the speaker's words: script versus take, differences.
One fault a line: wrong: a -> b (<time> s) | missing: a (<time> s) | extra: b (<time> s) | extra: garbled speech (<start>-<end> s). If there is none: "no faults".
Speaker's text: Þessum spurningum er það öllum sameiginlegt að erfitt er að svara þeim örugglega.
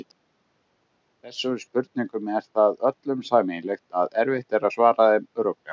no faults